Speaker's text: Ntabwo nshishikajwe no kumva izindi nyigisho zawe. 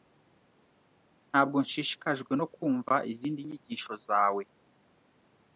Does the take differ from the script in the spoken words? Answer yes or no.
no